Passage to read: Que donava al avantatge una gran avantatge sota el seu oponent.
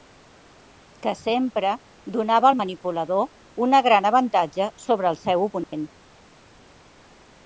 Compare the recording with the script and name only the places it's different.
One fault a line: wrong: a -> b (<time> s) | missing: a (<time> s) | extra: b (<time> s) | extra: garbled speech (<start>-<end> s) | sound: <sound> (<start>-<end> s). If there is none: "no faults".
extra: sempre (1.2 s)
wrong: avantatge -> manipulador (2.6 s)
wrong: sota -> sobre (4.8 s)
sound: dropout (5.6-5.7 s)